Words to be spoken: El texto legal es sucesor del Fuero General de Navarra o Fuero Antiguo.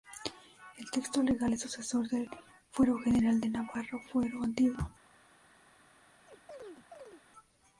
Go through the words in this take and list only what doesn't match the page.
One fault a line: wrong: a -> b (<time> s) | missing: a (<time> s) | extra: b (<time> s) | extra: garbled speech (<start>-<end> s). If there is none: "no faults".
no faults